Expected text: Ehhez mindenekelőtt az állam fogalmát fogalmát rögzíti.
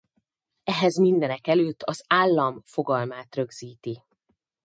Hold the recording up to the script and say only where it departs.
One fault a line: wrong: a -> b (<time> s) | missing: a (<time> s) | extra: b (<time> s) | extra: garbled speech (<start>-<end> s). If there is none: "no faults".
missing: fogalmát (3.4 s)